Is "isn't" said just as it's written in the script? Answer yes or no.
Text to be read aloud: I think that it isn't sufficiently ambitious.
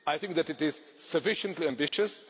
no